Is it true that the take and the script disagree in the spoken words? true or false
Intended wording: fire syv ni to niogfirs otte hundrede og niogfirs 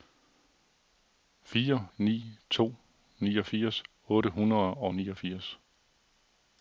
true